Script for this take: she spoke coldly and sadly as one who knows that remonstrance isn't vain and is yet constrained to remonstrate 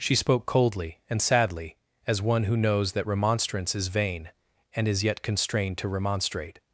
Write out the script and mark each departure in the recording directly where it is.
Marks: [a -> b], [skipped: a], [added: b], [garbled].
she spoke coldly and sadly as one who knows that remonstrance [isn't -> is] vain and is yet constrained to remonstrate